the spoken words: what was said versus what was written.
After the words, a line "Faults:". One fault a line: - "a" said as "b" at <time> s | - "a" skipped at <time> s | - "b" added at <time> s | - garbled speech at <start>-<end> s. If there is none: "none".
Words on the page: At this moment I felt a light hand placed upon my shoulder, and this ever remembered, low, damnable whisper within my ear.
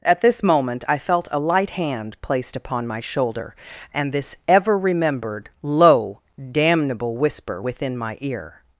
At this moment I felt a light hand placed upon my shoulder, and this ever remembered, low, damnable whisper within my ear.
Faults:
none